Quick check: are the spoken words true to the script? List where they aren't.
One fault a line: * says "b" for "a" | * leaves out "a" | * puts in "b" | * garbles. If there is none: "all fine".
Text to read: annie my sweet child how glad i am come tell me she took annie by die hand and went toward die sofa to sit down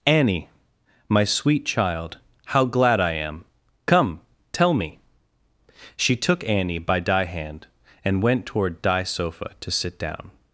all fine